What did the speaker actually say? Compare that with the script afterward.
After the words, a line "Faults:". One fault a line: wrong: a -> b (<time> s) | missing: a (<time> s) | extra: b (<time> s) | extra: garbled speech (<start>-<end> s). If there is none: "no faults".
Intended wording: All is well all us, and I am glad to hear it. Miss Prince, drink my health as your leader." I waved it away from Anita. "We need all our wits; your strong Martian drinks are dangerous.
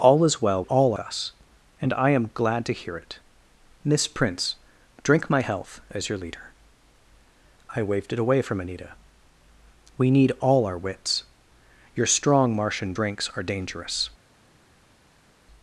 All is well all us, and I am glad to hear it. Miss Prince, drink my health as your leader." I waved it away from Anita. "We need all our wits; your strong Martian drinks are dangerous.
Faults:
no faults